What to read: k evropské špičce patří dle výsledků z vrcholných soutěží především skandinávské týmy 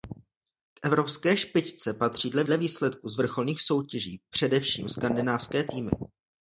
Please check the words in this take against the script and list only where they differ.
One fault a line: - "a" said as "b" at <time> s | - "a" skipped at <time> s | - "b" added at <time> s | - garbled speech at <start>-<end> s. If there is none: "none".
- "dle" added at 2.4 s